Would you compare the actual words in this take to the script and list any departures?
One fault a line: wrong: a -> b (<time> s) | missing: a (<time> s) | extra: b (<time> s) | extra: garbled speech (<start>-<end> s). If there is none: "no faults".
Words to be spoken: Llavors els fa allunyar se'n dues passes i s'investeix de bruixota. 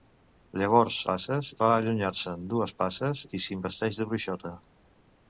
wrong: els -> passes (1.1 s)